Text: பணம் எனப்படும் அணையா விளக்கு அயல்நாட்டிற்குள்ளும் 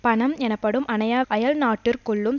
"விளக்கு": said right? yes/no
no